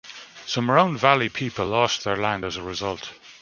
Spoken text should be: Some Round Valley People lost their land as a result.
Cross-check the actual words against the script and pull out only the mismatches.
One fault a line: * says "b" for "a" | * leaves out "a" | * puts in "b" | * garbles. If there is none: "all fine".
all fine